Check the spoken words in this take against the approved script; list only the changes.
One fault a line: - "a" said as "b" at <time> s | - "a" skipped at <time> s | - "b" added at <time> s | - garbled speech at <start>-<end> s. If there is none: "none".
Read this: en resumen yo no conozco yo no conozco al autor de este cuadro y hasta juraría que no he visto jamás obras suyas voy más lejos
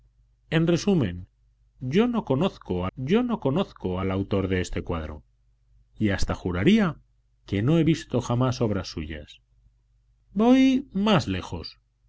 none